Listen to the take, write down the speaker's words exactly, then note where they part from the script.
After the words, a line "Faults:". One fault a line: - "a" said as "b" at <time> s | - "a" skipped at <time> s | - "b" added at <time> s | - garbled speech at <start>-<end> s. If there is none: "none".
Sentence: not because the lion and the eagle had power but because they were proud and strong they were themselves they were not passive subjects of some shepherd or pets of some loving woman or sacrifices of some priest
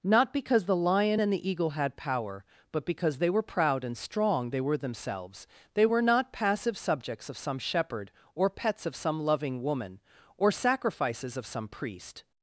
not because the lion and the eagle had power but because they were proud and strong they were themselves they were not passive subjects of some shepherd or pets of some loving woman or sacrifices of some priest
Faults:
none